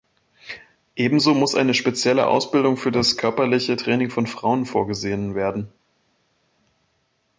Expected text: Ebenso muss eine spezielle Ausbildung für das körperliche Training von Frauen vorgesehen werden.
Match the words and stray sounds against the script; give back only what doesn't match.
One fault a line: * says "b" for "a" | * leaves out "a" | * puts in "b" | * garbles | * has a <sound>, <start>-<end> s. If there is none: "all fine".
all fine